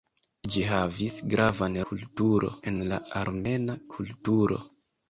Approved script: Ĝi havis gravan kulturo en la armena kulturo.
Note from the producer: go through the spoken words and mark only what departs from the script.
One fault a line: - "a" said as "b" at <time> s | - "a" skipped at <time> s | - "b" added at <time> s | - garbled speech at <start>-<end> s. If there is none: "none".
none